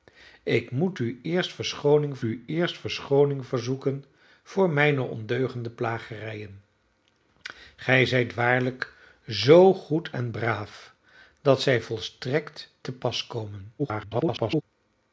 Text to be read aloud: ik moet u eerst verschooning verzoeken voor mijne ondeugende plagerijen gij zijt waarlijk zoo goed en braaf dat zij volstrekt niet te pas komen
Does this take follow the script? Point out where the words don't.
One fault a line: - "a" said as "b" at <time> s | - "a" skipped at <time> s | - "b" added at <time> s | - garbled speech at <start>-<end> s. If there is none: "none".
- "u eerst verschooning" added at 2.2 s
- "niet" skipped at 12.7 s
- garbled speech at 13.8-14.6 s